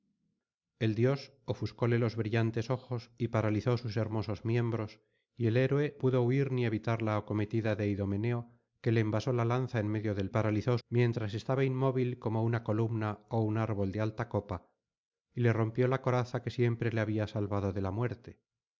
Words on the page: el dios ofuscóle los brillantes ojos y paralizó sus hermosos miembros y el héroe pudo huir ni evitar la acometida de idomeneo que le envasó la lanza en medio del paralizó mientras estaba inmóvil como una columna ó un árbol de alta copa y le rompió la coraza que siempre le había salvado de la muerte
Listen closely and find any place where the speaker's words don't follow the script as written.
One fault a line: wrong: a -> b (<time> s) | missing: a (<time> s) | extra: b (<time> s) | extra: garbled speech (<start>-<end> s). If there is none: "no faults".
no faults